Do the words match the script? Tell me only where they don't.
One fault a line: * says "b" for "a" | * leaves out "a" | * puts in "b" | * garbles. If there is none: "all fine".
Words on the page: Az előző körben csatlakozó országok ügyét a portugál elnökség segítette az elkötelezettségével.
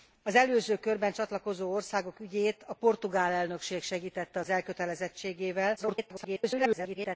* garbles